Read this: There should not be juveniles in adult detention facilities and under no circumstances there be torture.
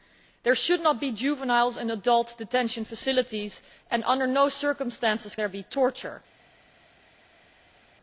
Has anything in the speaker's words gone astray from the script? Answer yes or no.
no